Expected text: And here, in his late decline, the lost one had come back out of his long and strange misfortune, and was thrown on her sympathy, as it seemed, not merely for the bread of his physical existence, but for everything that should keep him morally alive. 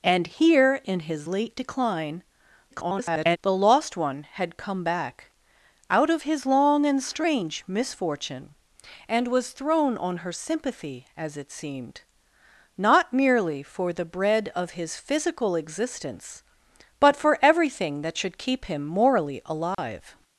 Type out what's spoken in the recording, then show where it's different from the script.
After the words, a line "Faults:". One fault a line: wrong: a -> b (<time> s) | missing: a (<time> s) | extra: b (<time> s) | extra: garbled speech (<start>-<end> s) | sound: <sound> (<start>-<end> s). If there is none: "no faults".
And here, in his late decline, [garbled] the lost one had come back out of his long and strange misfortune, and was thrown on her sympathy, as it seemed, not merely for the bread of his physical existence, but for everything that should keep him morally alive.
Faults:
extra: garbled speech (2.7-3.4 s)
sound: dropout (19.7-19.8 s)